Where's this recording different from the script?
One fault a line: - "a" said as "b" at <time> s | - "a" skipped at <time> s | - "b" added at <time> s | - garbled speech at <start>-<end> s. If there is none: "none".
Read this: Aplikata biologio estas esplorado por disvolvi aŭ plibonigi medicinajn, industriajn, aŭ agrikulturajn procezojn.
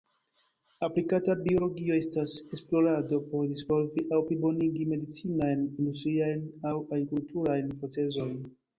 none